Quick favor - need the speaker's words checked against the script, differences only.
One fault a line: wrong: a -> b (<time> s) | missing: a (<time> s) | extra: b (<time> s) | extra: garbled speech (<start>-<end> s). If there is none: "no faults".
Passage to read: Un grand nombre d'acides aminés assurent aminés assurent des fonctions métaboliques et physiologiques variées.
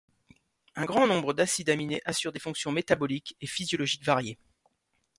missing: aminés assurent (2.3 s)